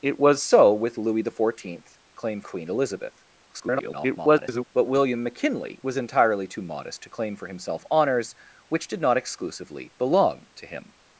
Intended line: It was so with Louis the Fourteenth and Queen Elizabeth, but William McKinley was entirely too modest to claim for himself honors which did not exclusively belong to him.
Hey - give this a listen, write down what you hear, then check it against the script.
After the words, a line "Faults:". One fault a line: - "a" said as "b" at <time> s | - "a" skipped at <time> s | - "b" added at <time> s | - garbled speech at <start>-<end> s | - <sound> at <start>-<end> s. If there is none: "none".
It was so with Louis the Fourteenth claim Queen Elizabeth, [garbled] but William McKinley was entirely too modest to claim for himself honors which did not exclusively belong to him.
Faults:
- "and" said as "claim" at 2.2 s
- garbled speech at 3.5-4.7 s